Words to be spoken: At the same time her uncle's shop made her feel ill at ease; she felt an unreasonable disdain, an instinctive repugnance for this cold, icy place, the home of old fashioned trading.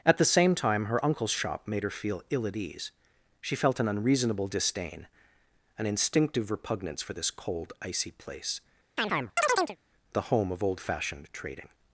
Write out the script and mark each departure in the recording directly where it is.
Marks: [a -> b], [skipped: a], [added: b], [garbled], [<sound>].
At the same time her uncle's shop made her feel ill at ease; she felt an unreasonable disdain, an instinctive repugnance for this cold, icy place, [chirp] the home of old fashioned trading.